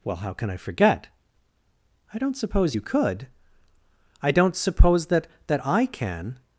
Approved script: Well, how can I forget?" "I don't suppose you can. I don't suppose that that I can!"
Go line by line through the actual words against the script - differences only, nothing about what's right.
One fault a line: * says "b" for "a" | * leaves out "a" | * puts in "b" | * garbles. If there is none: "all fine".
* says "could" for "can"